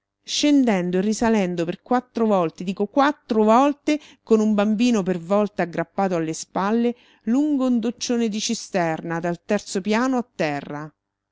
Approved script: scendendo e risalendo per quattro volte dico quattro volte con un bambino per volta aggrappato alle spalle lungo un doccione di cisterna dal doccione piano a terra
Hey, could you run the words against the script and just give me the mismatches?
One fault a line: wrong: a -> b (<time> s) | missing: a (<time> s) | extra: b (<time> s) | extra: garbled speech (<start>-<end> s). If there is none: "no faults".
wrong: doccione -> terzo (9.4 s)